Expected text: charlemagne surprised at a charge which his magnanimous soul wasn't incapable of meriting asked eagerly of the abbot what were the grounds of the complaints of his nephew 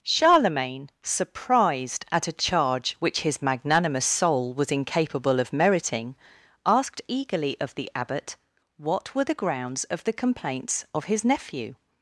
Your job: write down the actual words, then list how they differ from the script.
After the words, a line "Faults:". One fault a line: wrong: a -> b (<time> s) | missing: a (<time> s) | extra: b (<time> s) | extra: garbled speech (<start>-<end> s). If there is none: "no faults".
charlemagne surprised at a charge which his magnanimous soul was incapable of meriting asked eagerly of the abbot what were the grounds of the complaints of his nephew
Faults:
wrong: wasn't -> was (4.5 s)